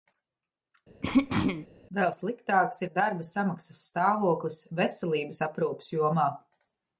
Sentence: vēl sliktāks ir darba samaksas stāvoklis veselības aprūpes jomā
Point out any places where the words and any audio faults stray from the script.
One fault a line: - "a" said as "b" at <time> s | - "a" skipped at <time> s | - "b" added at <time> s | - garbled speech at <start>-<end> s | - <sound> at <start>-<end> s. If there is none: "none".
- throat clearing at 1.0-1.7 s